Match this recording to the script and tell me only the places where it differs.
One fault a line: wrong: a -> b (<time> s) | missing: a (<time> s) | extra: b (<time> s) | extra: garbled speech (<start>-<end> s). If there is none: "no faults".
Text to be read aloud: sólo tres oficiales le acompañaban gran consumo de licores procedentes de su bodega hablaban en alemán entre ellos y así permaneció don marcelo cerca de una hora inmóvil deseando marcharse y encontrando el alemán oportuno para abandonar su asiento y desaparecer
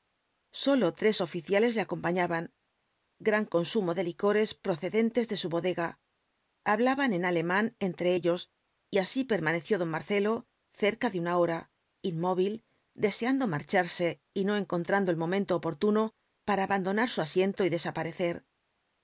extra: no (14.4 s)
wrong: alemán -> momento (15.2 s)